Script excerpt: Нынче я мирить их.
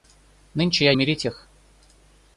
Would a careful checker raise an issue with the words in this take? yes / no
no